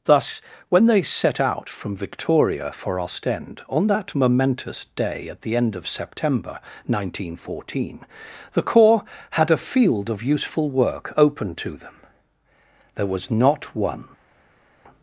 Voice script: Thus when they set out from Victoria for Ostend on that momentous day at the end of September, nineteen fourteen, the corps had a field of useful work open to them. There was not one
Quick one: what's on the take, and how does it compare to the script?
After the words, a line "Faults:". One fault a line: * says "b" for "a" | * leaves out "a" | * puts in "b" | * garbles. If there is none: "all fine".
Thus when they set out from Victoria for Ostend on that momentous day at the end of September, nineteen fourteen, the corps had a field of useful work open to them. There was not one
Faults:
all fine